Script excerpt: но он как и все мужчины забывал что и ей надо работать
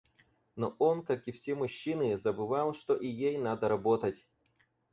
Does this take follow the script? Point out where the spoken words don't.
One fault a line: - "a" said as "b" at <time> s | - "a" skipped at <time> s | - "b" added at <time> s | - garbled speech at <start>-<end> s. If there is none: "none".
none